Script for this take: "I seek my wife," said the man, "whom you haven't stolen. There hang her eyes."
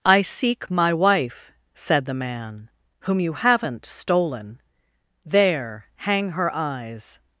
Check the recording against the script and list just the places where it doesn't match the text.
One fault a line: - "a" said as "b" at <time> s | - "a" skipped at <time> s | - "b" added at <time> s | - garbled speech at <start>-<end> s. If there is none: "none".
none